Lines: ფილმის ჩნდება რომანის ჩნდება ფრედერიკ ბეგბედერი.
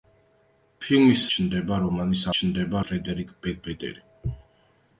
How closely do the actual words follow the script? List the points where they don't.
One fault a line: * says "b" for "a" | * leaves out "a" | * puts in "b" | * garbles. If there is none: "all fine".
all fine